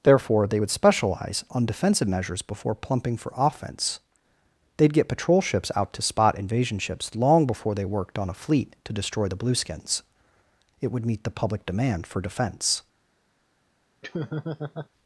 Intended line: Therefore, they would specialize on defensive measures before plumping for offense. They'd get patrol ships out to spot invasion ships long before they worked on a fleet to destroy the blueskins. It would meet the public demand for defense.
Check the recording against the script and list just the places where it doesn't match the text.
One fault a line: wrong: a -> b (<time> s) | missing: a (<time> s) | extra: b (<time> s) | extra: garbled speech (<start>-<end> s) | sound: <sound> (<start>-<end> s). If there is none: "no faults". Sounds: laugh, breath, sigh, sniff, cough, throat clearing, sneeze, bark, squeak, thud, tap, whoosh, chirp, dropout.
sound: laugh (14.0-14.9 s)